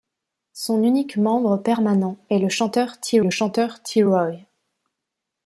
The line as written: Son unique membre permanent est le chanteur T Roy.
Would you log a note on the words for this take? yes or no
yes